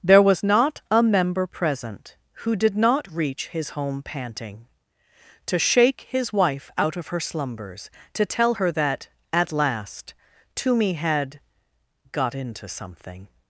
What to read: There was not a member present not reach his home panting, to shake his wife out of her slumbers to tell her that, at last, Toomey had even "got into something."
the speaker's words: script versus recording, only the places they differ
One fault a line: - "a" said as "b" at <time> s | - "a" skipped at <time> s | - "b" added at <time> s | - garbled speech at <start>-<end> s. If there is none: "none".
- "who did" added at 2.3 s
- "even" skipped at 11.4 s